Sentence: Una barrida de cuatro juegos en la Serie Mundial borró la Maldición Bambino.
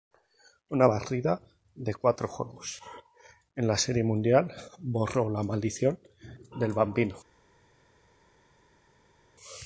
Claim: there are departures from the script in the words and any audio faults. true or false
true